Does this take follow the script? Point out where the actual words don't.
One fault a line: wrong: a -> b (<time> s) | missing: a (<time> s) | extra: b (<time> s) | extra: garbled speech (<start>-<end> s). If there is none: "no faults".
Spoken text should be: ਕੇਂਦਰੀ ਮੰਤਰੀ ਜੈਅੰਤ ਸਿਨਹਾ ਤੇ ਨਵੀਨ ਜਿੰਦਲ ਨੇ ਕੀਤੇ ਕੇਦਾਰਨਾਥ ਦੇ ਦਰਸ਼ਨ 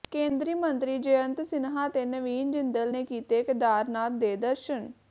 no faults